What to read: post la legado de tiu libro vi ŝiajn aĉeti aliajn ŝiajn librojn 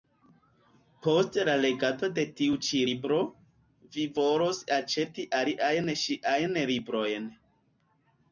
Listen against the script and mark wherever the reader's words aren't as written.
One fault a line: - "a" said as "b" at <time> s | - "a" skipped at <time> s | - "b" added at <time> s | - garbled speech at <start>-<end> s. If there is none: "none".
- "ĉi" added at 2.7 s
- "ŝiajn" said as "volos" at 4.2 s